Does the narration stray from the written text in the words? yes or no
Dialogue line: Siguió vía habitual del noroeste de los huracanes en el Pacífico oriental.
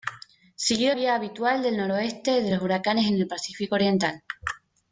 no